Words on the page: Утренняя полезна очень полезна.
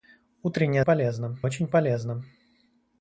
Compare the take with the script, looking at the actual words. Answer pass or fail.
pass